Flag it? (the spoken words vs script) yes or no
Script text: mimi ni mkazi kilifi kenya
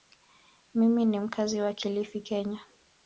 yes